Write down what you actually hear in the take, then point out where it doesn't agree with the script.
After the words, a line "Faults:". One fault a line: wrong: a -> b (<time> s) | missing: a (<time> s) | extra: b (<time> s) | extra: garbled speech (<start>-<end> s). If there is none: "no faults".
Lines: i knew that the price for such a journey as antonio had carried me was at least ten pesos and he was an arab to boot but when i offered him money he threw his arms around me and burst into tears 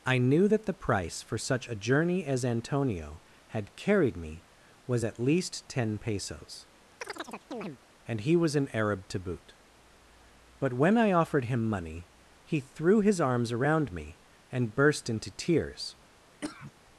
i knew that the price for such a journey as antonio had carried me was at least ten pesos and he was an arab to boot but when i offered him money he threw his arms around me and burst into tears
Faults:
no faults